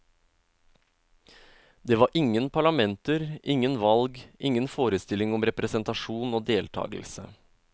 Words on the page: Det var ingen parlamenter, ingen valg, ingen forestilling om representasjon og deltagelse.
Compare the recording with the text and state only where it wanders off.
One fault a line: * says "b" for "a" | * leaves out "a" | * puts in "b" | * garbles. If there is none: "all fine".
all fine